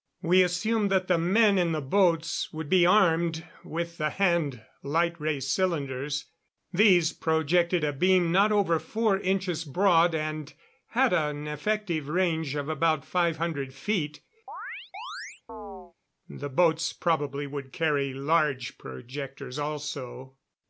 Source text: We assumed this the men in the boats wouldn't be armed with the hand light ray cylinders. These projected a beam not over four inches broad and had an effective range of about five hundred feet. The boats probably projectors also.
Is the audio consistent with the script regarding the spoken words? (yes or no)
no